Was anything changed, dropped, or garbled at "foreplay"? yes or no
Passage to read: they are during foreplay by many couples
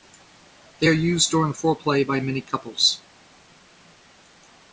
no